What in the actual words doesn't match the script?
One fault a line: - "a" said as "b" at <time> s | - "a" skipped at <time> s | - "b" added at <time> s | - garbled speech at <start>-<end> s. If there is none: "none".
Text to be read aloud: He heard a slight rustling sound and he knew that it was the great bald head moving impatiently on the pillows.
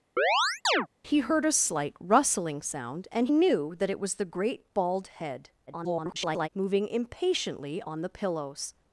- "he" skipped at 3.3 s
- garbled speech at 5.7-6.5 s